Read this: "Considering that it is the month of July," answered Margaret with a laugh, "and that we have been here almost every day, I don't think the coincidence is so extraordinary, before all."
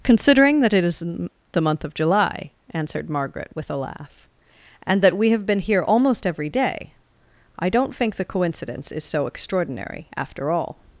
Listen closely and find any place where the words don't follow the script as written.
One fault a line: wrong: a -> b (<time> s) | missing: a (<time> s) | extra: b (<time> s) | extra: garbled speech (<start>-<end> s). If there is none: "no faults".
wrong: before -> after (10.2 s)